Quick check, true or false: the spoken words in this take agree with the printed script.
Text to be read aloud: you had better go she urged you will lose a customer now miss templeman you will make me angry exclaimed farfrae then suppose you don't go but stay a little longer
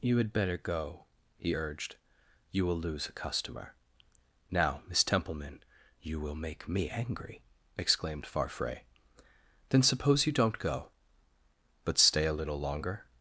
false